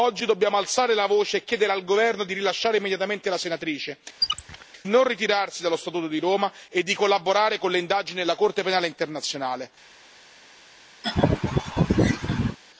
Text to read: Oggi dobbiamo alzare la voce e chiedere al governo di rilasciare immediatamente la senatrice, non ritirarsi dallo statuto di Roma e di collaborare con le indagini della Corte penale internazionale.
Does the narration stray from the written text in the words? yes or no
no